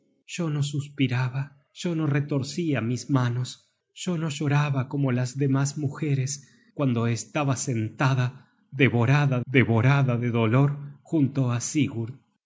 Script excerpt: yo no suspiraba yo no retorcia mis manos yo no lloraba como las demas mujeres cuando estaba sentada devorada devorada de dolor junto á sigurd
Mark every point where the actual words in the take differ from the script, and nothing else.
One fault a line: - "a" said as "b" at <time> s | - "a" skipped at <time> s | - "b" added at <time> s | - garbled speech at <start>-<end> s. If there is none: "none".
none